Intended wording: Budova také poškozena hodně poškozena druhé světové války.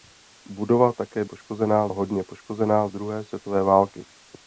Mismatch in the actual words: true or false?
false